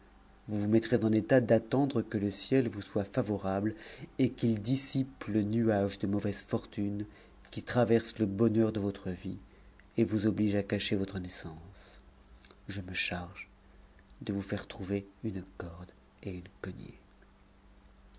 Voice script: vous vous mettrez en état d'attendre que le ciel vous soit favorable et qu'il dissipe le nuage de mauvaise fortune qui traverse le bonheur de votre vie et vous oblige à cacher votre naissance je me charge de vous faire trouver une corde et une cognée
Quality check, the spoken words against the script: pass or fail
pass